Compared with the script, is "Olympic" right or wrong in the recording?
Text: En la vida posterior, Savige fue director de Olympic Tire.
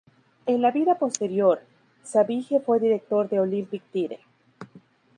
right